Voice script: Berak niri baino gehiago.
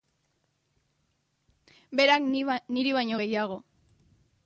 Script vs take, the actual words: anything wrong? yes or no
no